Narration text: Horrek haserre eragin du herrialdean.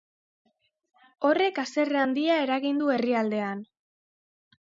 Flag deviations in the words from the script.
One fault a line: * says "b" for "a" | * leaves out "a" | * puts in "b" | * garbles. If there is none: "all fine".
* puts in "handia"